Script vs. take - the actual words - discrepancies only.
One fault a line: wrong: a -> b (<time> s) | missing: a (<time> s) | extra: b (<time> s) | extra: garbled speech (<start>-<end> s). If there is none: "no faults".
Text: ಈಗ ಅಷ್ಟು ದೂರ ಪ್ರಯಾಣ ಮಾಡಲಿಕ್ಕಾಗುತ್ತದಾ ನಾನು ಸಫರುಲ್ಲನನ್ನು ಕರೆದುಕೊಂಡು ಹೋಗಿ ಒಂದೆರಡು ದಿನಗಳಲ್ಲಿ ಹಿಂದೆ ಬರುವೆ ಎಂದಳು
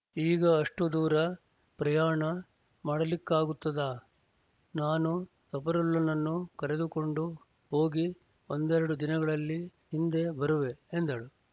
no faults